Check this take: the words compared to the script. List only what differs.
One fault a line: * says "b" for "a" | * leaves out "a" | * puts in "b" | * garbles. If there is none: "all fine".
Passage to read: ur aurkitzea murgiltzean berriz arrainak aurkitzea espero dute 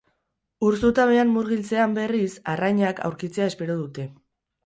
* says "zutabean" for "aurkitzea"